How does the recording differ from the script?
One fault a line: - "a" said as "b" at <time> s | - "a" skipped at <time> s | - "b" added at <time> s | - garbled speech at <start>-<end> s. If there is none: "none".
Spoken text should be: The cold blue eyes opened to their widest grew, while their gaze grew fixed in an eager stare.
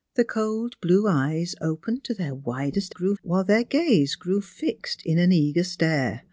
none